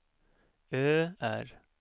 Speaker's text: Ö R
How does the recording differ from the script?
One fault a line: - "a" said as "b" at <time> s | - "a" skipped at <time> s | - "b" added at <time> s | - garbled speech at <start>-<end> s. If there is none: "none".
none